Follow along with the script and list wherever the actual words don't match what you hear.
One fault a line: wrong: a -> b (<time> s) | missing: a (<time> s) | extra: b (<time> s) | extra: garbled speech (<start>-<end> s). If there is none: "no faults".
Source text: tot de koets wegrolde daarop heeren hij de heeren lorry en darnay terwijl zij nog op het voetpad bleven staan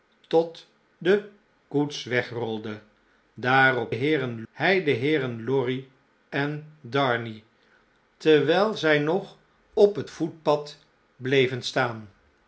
no faults